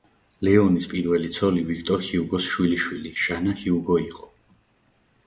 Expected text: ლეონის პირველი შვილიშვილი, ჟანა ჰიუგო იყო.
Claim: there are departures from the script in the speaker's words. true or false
true